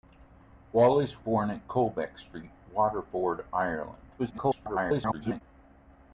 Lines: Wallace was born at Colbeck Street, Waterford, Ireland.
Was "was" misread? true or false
true